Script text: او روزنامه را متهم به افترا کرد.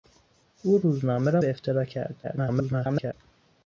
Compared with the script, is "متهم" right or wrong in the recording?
wrong